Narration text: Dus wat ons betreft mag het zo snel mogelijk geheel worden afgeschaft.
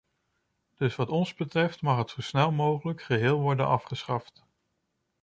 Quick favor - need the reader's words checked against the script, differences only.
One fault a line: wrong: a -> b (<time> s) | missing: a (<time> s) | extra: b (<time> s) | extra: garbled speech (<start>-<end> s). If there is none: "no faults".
no faults